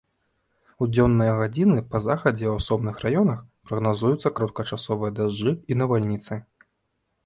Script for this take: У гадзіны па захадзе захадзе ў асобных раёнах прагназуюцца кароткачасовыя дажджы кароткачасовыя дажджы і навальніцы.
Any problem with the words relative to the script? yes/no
yes